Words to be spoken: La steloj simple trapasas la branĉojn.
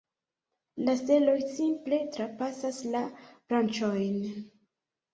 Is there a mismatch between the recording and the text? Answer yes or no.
no